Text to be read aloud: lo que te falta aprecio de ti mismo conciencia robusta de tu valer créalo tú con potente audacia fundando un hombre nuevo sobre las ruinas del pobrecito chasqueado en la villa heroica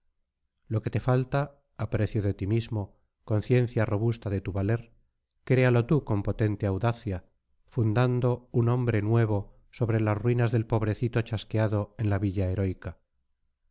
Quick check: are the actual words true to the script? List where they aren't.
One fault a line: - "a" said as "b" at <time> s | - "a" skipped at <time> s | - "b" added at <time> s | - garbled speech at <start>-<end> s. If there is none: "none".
none